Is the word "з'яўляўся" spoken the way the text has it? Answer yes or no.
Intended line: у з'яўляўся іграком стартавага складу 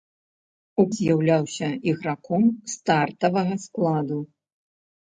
yes